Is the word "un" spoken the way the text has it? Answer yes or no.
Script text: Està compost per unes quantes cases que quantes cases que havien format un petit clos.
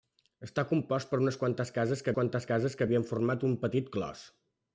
yes